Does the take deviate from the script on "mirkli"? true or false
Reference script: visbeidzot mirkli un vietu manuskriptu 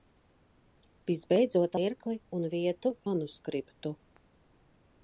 false